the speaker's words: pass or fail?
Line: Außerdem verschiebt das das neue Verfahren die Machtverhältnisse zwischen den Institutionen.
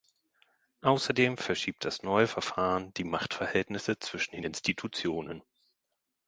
fail